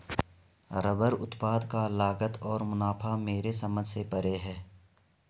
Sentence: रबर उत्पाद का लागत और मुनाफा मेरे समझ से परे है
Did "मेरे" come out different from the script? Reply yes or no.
no